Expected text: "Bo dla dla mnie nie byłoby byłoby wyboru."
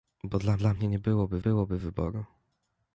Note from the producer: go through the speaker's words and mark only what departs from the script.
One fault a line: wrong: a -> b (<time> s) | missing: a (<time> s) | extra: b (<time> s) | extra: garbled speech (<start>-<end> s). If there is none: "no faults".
no faults